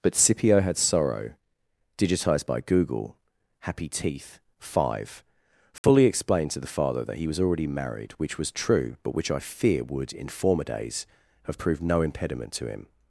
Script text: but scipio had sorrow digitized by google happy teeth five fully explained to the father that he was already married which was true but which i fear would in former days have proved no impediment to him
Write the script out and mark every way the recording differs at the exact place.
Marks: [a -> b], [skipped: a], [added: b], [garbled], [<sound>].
but scipio had sorrow digitized by google happy teeth five fully [dropout] explained to the father that he was already married which was true but which i fear would in former days have proved no impediment to him